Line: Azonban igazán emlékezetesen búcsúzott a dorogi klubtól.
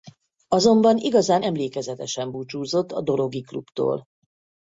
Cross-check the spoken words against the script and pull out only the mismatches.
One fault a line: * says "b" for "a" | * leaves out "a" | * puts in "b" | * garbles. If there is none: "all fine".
all fine